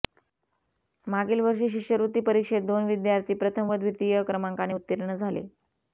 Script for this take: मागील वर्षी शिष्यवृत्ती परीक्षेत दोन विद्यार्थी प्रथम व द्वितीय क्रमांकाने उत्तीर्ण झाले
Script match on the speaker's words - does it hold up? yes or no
yes